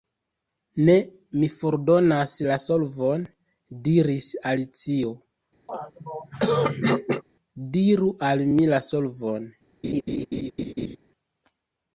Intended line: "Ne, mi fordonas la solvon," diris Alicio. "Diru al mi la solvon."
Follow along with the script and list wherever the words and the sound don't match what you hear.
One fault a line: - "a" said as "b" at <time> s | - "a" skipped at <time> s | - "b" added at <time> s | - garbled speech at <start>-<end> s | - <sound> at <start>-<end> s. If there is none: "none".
- throat clearing at 5.7-7.2 s
- laugh at 9.8-11.0 s